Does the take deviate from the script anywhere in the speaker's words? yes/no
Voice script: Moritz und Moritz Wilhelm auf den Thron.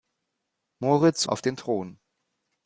yes